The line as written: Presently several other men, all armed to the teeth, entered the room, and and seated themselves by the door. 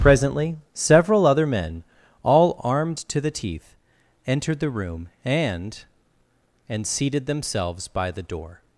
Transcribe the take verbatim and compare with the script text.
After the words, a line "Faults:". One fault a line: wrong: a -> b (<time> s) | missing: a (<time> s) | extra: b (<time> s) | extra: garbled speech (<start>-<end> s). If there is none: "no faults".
Presently several other men, all armed to the teeth, entered the room, and and seated themselves by the door.
Faults:
no faults